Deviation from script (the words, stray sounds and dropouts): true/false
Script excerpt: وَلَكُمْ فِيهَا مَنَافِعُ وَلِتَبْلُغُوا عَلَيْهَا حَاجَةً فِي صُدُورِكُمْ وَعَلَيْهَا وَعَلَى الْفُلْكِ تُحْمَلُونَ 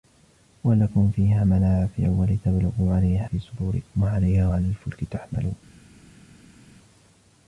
true